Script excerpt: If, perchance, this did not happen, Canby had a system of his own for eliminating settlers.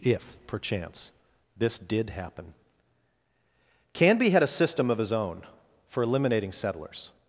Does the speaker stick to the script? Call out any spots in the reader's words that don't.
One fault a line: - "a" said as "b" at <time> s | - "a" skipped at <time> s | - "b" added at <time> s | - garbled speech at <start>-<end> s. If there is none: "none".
- "not" skipped at 2.1 s